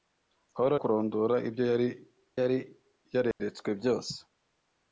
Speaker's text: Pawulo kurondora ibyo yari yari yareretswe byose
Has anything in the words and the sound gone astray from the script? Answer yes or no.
yes